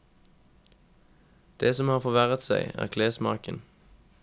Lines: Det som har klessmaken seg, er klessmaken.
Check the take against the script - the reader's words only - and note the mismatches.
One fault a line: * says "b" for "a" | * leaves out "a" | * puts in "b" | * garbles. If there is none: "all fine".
* says "forverret" for "klessmaken"